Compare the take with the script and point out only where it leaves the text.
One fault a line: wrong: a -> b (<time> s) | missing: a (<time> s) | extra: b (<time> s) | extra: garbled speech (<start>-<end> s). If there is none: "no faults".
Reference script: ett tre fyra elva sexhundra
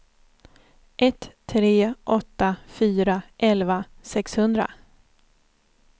extra: åtta (2.0 s)